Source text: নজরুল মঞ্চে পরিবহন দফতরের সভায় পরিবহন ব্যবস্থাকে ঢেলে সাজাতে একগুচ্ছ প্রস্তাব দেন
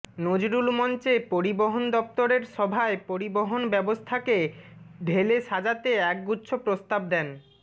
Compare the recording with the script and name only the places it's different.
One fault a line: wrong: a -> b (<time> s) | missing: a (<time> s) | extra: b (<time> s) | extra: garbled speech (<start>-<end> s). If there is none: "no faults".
no faults